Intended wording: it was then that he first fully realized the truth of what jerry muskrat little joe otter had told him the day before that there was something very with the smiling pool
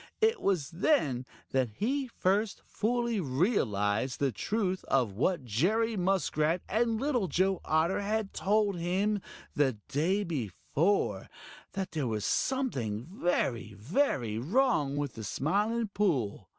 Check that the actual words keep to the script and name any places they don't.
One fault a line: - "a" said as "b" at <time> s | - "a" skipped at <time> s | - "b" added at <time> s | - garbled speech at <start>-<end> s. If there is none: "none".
- "and" added at 6.7 s
- "very wrong" added at 13.7 s